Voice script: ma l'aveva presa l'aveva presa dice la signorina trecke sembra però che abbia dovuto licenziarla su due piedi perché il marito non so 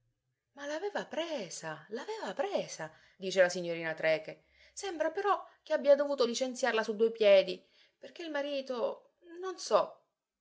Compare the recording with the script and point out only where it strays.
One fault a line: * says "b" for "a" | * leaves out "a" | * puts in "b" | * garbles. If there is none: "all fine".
all fine